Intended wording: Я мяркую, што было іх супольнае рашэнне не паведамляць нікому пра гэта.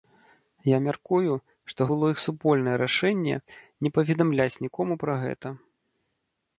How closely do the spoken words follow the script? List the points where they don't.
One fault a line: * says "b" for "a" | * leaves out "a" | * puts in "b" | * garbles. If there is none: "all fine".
all fine